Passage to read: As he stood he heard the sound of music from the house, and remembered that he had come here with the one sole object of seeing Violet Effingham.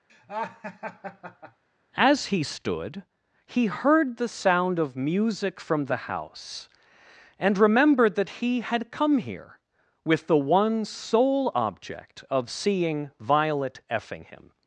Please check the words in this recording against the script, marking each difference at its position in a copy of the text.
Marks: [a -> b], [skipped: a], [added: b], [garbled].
As he stood he heard the sound of music from the house, and remembered that he had come here with the one sole object of seeing Violet Effingham.